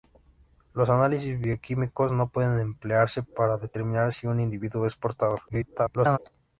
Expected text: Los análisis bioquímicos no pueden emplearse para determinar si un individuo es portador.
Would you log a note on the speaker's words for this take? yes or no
yes